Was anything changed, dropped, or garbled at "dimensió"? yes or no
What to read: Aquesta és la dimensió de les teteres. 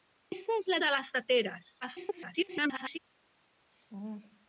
yes